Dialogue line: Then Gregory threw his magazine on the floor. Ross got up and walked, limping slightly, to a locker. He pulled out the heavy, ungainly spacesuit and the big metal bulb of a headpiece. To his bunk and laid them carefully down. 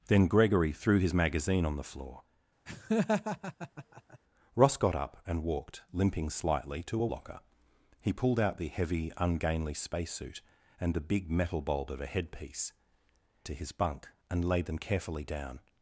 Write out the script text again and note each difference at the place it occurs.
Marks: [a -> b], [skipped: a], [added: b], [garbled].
Then Gregory threw his magazine on the floor. Ross got up and walked, limping slightly, to a locker. He pulled out the heavy, ungainly spacesuit and the big metal bulb of a headpiece. To his bunk and laid them carefully down.